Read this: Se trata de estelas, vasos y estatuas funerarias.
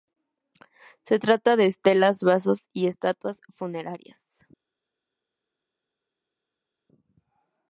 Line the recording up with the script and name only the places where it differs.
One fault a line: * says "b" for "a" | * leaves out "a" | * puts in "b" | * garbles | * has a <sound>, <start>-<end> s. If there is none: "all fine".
all fine